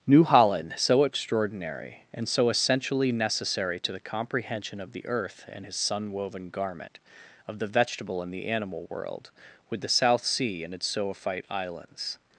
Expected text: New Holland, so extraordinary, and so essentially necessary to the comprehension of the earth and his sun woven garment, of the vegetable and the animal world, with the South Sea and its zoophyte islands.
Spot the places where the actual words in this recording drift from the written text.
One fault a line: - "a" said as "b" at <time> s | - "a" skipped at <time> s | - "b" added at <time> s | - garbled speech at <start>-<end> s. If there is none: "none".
none